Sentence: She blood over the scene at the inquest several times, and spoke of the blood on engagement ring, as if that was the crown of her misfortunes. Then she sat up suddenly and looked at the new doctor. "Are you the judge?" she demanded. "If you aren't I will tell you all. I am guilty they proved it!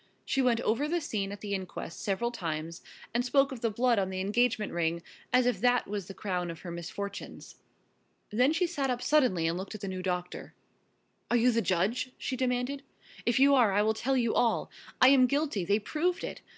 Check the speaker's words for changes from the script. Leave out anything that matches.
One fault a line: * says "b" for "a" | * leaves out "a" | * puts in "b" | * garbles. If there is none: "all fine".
* says "went" for "blood"
* puts in "the"
* says "are" for "aren't"